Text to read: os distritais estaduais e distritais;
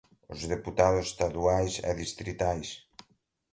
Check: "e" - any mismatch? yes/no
no